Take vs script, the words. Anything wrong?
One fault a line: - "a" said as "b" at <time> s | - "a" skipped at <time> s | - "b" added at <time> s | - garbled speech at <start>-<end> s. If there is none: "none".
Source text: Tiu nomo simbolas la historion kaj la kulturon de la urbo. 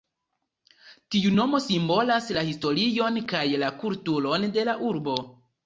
none